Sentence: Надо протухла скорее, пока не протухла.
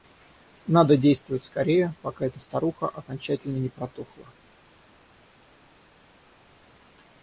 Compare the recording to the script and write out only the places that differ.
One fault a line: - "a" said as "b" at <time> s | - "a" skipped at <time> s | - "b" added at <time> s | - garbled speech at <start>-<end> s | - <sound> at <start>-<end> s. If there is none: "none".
- "протухла" said as "действовать" at 1.0 s
- "эта старуха окончательно" added at 2.2 s